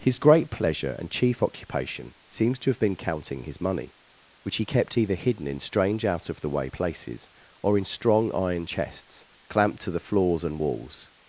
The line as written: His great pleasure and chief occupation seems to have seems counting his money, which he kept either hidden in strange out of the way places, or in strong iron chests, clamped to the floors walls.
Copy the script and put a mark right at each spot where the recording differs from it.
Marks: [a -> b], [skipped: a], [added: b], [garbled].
His great pleasure and chief occupation seems to have [seems -> been] counting his money, which he kept either hidden in strange out of the way places, or in strong iron chests, clamped to the floors [added: and] walls.